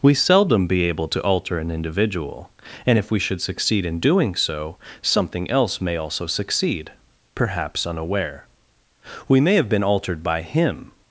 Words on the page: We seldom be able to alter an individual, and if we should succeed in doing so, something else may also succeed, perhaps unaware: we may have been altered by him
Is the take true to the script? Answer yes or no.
yes